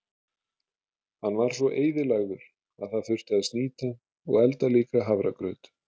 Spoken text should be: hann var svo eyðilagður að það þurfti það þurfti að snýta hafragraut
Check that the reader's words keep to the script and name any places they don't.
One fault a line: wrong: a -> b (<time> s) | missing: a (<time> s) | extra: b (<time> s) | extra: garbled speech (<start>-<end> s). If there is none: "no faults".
wrong: það þurfti að snýta -> að snýta og elda líka (3.4 s)